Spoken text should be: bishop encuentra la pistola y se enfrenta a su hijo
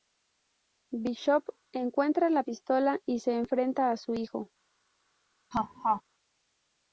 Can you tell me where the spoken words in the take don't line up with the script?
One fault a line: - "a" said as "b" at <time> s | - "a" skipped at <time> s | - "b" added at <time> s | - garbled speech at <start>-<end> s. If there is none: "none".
none